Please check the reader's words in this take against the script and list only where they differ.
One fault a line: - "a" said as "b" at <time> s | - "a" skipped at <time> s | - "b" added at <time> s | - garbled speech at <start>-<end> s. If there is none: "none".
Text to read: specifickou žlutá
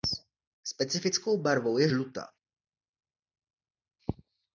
- "barvou je" added at 1.4 s